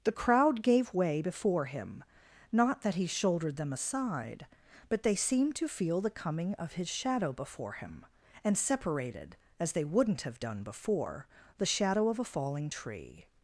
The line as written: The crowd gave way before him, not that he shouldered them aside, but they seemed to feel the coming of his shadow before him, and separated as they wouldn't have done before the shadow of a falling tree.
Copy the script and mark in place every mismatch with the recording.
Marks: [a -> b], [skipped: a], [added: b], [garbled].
The crowd gave way before him, not that he shouldered them aside, but they seemed to feel the coming of his shadow before him, and separated as they wouldn't have done before the shadow of a falling tree.